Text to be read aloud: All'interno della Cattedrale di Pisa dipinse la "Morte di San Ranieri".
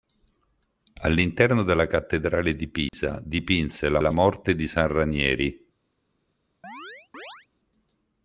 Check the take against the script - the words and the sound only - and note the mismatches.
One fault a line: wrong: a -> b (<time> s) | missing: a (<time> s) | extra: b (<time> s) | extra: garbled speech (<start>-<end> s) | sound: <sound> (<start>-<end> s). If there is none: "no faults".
sound: dropout (2.9-2.9 s)
extra: la (4.0 s)
sound: chirp (6.6-7.5 s)